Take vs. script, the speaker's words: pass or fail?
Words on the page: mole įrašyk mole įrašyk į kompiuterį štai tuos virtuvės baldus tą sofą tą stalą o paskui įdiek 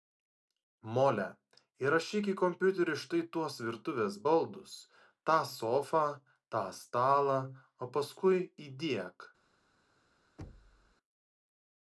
fail